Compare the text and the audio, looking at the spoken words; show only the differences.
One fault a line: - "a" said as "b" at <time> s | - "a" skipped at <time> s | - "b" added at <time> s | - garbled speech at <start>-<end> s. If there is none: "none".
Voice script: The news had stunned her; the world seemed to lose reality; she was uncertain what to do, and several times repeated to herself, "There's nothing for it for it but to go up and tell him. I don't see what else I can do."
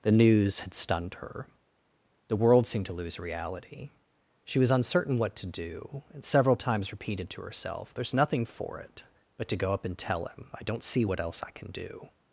- "for it" skipped at 9.0 s